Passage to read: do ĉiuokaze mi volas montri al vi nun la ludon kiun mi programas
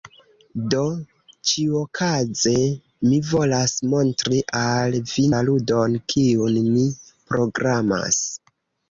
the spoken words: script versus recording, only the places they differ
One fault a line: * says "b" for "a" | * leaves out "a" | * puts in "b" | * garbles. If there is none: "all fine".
* leaves out "nun"